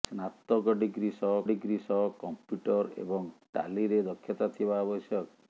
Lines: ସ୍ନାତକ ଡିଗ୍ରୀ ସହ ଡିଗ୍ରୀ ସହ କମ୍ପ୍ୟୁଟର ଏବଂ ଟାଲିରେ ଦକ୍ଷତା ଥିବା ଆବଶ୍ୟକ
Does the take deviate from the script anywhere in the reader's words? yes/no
no